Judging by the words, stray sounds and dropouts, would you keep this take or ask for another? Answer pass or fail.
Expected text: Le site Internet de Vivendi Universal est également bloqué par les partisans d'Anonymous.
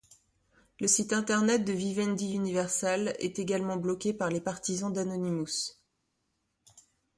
pass